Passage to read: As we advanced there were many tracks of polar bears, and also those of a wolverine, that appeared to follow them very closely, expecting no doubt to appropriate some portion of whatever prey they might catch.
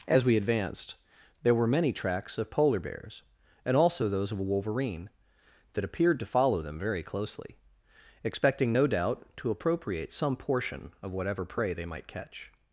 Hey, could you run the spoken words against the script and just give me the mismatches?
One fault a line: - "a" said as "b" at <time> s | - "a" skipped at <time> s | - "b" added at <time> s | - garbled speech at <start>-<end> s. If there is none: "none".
none